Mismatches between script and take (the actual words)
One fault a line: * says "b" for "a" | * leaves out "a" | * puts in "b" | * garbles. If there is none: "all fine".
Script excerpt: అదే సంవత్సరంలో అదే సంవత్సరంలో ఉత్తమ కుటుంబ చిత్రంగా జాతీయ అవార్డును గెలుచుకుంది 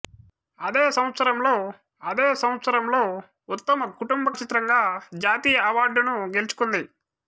all fine